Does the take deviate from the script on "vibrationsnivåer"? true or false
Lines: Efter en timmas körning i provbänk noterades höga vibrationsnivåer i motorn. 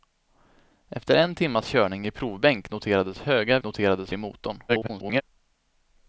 true